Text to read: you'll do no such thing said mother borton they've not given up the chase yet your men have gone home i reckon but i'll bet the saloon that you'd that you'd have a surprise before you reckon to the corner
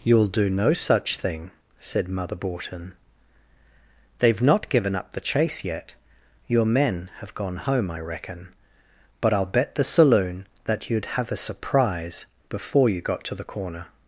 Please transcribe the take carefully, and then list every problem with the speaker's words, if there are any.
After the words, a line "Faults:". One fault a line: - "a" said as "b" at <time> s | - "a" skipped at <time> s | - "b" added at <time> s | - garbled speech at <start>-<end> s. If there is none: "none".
you'll do no such thing said mother borton they've not given up the chase yet your men have gone home i reckon but i'll bet the saloon that you'd have a surprise before you got to the corner
Faults:
- "that you'd" skipped at 11.0 s
- "reckon" said as "got" at 13.0 s